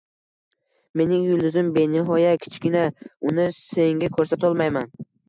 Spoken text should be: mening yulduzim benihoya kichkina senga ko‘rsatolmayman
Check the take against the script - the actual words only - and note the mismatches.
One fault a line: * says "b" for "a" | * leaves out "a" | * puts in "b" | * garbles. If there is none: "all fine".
* puts in "uni"